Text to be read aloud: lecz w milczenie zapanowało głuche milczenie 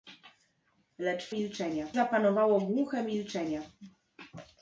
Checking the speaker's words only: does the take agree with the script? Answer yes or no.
yes